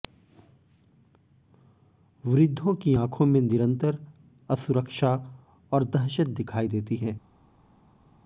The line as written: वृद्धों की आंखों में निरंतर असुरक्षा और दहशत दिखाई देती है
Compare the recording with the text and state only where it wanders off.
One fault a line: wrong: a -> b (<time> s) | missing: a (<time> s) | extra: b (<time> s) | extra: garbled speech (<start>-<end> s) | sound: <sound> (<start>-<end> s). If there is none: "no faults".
no faults